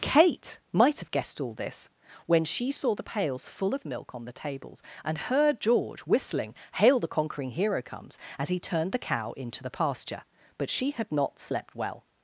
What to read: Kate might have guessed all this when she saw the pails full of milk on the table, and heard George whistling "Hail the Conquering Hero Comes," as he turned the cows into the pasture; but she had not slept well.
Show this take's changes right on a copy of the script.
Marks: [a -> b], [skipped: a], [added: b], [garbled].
Kate might have guessed all this when she saw the pails full of milk on the [table, -> tables] and heard George whistling "Hail the Conquering Hero Comes," as he turned the [cows -> cow] into the pasture; but she had not slept well.